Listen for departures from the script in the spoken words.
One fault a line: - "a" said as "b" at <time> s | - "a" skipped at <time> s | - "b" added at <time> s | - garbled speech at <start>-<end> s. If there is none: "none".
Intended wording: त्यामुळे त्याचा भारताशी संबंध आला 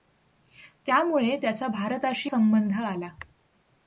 none